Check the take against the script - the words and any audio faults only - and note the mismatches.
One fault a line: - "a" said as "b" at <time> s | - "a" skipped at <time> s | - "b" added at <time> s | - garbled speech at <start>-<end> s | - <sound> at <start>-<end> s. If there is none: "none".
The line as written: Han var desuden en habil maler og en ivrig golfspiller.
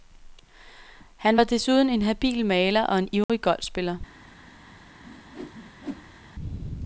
- dropout at 3.2-3.3 s
- whoosh at 5.0-6.2 s